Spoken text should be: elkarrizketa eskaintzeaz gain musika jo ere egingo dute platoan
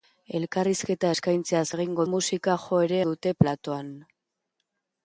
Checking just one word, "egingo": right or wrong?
wrong